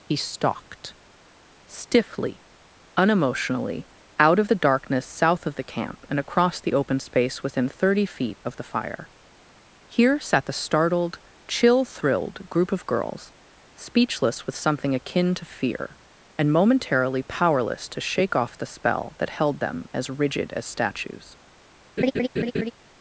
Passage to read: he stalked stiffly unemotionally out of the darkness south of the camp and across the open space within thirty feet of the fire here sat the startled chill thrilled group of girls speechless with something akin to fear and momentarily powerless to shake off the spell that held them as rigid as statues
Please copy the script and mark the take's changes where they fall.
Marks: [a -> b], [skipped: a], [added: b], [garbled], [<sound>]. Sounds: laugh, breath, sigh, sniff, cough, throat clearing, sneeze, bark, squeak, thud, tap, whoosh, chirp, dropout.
he stalked stiffly unemotionally out of the darkness south of the camp and across the open space within thirty feet of the fire here sat the startled chill thrilled group of girls speechless with something akin to fear and momentarily powerless to shake off the spell that held them as rigid as statues [laugh]